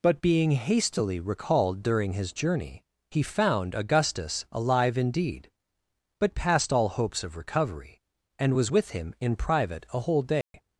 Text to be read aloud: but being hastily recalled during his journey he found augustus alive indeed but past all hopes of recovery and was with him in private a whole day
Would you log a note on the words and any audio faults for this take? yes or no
yes